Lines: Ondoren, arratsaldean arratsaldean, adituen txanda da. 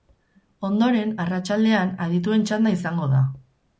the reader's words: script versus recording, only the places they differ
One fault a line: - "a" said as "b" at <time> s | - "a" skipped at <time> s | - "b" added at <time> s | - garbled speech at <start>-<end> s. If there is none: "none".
- "arratsaldean" skipped at 1.9 s
- "izango" added at 2.8 s